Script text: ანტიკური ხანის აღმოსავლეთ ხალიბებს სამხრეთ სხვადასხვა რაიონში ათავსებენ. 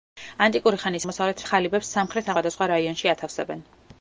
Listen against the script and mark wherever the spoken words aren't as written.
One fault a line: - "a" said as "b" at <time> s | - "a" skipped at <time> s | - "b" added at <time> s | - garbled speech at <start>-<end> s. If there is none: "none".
none